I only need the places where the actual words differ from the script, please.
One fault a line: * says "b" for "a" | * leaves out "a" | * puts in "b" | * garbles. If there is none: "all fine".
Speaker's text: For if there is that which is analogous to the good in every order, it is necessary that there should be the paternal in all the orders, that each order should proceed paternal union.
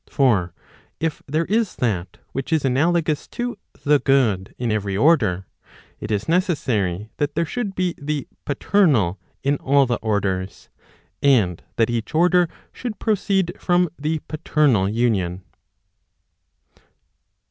* puts in "and"
* puts in "from the"